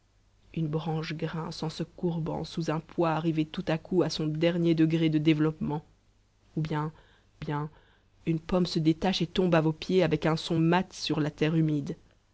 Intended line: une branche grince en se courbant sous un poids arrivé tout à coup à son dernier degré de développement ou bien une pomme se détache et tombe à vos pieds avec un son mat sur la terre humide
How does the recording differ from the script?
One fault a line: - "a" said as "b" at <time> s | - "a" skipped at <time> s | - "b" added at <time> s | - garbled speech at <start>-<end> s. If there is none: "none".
- "bien" added at 7.4 s